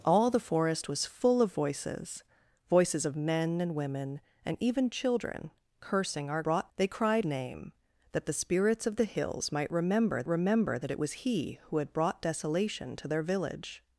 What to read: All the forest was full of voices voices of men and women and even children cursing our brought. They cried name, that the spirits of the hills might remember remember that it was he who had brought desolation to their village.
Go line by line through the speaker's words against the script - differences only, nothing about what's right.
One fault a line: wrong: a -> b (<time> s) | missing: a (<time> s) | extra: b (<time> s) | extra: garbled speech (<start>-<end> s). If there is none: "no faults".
no faults